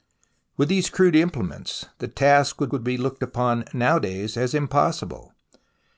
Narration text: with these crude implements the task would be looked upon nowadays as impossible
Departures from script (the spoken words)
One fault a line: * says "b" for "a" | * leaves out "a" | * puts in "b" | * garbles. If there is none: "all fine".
* puts in "would"